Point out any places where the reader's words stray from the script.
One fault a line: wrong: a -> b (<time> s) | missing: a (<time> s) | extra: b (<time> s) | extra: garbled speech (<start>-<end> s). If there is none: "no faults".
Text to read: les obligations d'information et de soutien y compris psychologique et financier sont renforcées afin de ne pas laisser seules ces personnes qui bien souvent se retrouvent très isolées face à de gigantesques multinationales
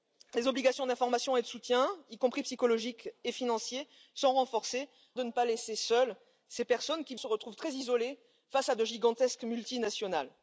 missing: afin (4.9 s)
missing: bien souvent (7.1 s)